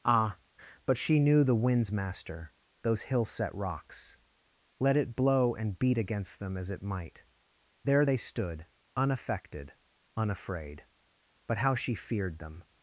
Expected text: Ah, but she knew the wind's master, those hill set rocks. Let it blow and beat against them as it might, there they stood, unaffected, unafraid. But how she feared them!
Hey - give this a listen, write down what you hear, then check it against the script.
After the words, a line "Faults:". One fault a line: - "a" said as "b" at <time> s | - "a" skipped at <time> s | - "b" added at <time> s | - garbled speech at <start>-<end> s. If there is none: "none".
Ah, but she knew the wind's master, those hill set rocks. Let it blow and beat against them as it might, there they stood, unaffected, unafraid. But how she feared them!
Faults:
none